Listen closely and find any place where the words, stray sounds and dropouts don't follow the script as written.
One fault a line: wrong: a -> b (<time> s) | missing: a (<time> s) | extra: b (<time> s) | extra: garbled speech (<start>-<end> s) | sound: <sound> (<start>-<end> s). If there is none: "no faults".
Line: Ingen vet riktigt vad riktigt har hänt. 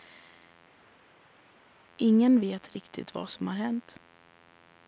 wrong: riktigt -> som (3.3 s)